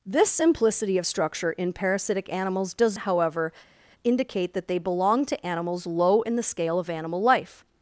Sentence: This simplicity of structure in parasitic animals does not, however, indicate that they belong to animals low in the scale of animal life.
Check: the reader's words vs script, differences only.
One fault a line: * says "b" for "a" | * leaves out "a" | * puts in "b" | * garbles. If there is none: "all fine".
* leaves out "not"